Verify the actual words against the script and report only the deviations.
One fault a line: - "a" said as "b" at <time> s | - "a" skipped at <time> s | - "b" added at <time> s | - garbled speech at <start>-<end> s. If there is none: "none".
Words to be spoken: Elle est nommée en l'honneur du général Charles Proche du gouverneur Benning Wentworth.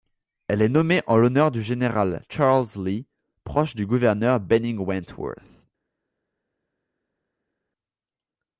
- "Lee" added at 2.8 s